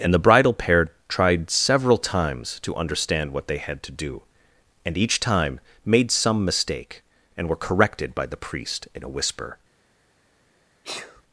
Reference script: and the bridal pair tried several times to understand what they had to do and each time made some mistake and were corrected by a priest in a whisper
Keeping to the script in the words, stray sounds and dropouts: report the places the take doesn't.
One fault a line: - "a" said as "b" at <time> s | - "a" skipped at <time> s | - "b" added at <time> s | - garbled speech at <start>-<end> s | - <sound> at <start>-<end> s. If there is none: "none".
- "a" said as "the" at 8.2 s
- sneeze at 10.8-11.2 s